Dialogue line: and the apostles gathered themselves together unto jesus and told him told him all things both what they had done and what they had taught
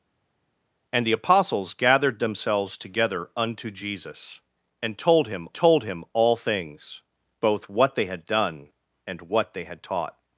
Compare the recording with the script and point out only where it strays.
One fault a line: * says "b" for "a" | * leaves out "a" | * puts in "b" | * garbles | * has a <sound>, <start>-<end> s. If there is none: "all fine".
all fine